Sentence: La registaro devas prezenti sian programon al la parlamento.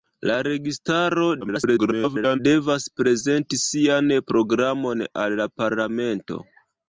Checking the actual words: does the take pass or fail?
fail